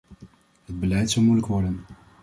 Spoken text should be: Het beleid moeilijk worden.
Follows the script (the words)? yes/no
no